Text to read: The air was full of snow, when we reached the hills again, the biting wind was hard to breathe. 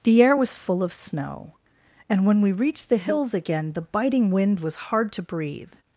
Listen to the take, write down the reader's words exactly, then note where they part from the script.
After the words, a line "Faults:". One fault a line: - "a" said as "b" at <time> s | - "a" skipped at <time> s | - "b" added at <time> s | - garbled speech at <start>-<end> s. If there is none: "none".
The air was full of snow, and when we reached the hills again, the biting wind was hard to breathe.
Faults:
- "and" added at 2.1 s